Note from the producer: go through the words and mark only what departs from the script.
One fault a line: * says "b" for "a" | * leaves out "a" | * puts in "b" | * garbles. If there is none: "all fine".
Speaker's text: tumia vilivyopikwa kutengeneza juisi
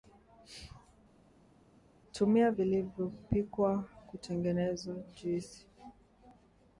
all fine